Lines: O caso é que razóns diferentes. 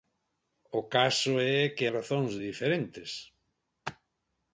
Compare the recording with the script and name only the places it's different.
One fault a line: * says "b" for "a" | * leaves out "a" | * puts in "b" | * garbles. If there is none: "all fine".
all fine